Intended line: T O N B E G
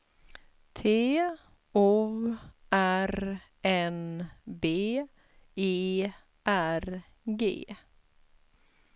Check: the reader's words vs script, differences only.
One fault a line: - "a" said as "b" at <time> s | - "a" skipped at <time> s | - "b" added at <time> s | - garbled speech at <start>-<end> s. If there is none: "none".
- "R" added at 2.7 s
- "R" added at 6.5 s